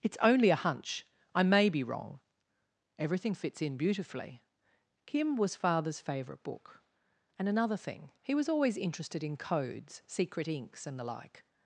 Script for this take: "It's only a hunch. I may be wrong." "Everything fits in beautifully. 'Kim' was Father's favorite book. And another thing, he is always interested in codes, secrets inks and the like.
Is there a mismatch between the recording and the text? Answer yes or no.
yes